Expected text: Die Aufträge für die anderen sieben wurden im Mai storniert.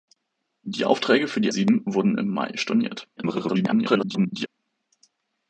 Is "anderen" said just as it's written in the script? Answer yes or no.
no